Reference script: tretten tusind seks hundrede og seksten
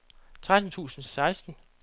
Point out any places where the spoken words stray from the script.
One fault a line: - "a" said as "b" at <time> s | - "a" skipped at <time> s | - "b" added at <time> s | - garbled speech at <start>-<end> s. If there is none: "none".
- "seks hundrede" skipped at 1.0 s